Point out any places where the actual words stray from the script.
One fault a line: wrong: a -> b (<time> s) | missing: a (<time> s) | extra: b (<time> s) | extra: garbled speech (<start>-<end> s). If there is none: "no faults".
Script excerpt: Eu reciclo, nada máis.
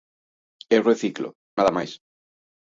no faults